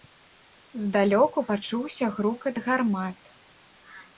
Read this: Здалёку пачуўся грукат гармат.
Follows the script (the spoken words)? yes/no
yes